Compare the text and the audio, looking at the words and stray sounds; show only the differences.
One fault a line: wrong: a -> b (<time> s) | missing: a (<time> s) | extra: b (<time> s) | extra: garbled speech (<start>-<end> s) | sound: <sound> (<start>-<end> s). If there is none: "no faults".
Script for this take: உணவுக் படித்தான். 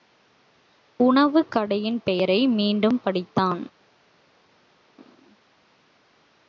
extra: கடையின் பெயரை மீண்டும் (1.5 s)